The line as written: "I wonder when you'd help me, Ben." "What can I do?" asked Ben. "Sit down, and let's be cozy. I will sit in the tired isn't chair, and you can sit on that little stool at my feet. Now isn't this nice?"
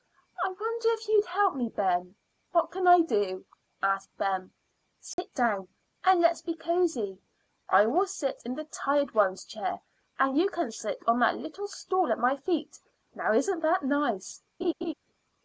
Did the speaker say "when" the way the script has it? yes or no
no